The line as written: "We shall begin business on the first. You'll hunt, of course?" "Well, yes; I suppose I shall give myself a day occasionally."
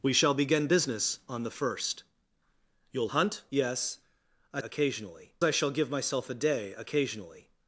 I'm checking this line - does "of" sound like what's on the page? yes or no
no